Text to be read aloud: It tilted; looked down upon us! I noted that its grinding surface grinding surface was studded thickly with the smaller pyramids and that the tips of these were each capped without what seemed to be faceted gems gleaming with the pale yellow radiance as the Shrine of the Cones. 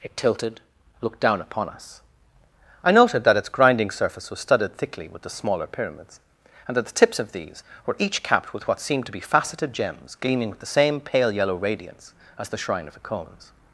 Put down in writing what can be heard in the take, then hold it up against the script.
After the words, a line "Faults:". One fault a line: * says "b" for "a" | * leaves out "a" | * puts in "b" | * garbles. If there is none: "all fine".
It tilted; looked down upon us! I noted that its grinding surface was studded thickly with the smaller pyramids and that the tips of these were each capped with what seemed to be faceted gems gleaming with the same pale yellow radiance as the Shrine of the Cones.
Faults:
* leaves out "grinding surface"
* says "with" for "without"
* puts in "same"